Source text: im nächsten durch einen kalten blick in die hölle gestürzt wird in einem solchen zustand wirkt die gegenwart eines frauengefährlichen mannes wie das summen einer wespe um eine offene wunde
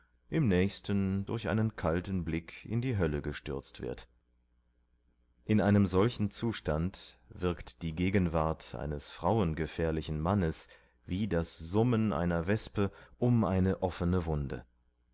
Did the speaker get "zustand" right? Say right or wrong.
right